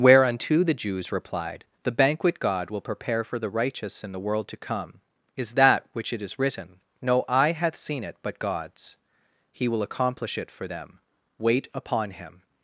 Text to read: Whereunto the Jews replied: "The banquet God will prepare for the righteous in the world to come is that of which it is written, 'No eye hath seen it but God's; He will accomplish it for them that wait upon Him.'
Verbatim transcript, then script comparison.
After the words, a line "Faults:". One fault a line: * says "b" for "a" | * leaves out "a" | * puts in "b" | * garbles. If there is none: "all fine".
Whereunto the Jews replied: "The banquet God will prepare for the righteous in the world to come is that which it is written, 'No eye hath seen it but God's; He will accomplish it for them wait upon Him.'
Faults:
* leaves out "of"
* leaves out "that"